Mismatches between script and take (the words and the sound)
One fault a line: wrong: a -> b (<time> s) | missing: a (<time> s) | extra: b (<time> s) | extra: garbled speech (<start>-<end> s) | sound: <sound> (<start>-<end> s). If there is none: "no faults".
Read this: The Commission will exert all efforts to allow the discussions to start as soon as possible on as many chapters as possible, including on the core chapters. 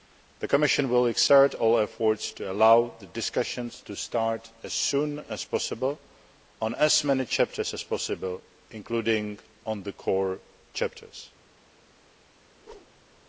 sound: whoosh (12.5-13.2 s)